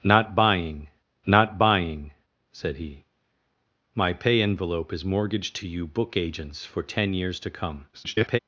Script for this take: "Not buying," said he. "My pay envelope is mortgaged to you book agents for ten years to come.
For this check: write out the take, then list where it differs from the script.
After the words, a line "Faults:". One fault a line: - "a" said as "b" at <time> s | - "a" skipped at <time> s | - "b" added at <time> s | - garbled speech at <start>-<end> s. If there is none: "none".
"Not buying not buying," said he. "My pay envelope is mortgaged to you book agents for ten years to come. [garbled]
Faults:
- "not buying" added at 1.3 s
- garbled speech at 7.9-8.4 s